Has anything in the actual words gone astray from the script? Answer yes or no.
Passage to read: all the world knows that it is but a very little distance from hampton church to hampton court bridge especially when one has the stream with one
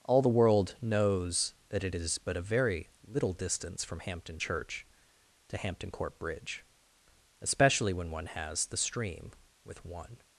no